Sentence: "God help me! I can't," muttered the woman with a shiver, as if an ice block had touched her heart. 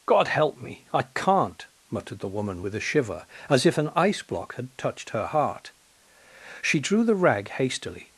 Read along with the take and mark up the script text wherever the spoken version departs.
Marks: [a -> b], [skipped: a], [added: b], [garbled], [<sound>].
"God help me! I can't," muttered the woman with a shiver, as if an ice block had touched her heart. [added: She drew the rag hastily]